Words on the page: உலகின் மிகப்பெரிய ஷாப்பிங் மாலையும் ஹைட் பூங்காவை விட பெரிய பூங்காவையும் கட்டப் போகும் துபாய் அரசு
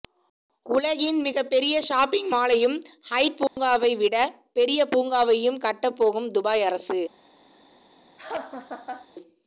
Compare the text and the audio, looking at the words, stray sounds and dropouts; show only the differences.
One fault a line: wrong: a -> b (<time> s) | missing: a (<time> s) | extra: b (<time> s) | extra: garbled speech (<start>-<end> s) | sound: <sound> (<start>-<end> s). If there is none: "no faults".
sound: dropout (3.5-3.6 s)
sound: laugh (8.2-9.1 s)